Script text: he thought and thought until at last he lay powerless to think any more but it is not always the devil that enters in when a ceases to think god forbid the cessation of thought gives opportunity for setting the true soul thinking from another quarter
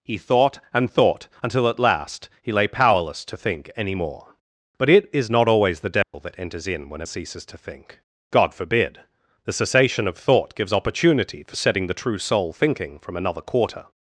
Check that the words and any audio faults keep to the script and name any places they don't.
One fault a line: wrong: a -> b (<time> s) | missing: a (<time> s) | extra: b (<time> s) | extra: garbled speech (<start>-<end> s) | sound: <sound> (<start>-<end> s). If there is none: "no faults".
sound: dropout (6.0-6.1 s)